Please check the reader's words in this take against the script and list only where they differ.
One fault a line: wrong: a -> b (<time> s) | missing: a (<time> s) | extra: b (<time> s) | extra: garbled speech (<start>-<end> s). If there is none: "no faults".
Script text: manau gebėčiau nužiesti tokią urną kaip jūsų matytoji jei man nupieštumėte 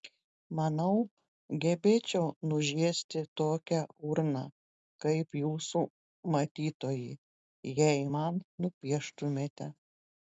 no faults